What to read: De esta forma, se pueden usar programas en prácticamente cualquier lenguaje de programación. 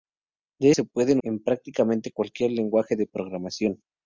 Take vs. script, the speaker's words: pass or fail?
fail